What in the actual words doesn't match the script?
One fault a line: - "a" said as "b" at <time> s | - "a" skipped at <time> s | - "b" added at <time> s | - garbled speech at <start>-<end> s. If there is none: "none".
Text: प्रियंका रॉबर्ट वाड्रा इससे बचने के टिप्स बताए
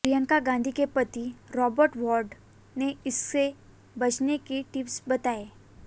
- "गांधी के पति" added at 0.4 s
- "ने" added at 2.8 s